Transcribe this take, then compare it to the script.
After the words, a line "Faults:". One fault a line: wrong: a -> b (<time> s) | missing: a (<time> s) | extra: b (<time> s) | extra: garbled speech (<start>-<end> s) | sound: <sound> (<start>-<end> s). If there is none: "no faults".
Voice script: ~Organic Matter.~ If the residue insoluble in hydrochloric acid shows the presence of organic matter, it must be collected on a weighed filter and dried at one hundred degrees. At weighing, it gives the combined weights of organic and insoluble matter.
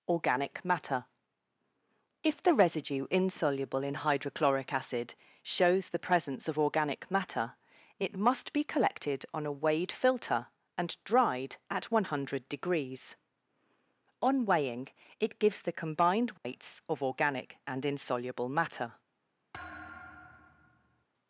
~Organic Matter.~ If the residue insoluble in hydrochloric acid shows the presence of organic matter, it must be collected on a weighed filter and dried at one hundred degrees. On weighing, it gives the combined weights of organic and insoluble matter.
Faults:
wrong: At -> On (14.2 s)
sound: dropout (16.4-16.4 s)
sound: thud (19.5-21.0 s)